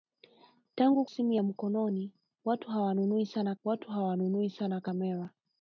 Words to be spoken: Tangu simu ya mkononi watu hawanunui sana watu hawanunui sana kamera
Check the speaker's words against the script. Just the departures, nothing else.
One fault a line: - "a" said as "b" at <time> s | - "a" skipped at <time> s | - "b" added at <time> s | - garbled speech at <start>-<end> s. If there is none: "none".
none